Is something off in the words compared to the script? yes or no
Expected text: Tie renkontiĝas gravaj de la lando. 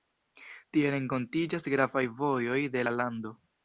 yes